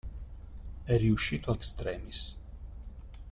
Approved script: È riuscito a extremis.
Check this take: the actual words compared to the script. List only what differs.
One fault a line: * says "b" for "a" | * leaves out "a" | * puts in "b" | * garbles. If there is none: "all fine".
all fine